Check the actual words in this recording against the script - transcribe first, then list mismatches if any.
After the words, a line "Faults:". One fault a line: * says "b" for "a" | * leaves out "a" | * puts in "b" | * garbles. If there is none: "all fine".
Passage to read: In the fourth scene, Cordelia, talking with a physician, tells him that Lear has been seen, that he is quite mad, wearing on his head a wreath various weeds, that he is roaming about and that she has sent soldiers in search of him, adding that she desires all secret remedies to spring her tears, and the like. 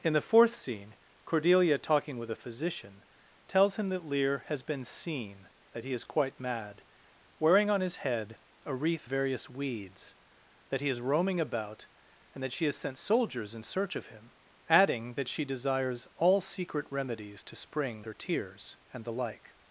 In the fourth scene, Cordelia, talking with a physician, tells him that Lear has been seen, that he is quite mad, wearing on his head a wreath various weeds, that he is roaming about and that she has sent soldiers in search of him, adding that she desires all secret remedies to spring her tears, and the like.
Faults:
all fine